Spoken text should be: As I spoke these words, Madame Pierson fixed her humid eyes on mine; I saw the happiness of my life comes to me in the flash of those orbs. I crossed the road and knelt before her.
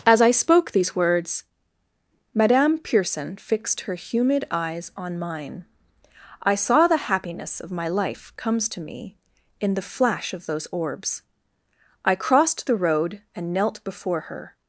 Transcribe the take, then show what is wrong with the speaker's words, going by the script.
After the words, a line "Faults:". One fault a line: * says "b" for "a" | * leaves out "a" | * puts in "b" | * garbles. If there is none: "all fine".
As I spoke these words, Madame Pierson fixed her humid eyes on mine; I saw the happiness of my life comes to me in the flash of those orbs. I crossed the road and knelt before her.
Faults:
all fine